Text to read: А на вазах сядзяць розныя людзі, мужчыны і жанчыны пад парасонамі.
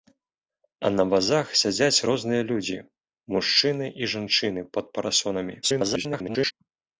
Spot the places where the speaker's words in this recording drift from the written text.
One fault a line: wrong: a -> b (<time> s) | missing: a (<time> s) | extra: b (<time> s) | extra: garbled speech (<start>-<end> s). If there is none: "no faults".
extra: garbled speech (5.6-6.5 s)